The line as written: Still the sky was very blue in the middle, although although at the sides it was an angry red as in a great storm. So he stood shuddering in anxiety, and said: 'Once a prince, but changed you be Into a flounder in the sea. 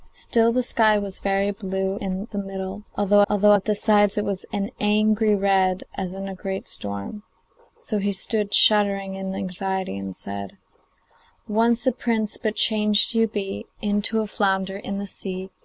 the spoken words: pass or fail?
pass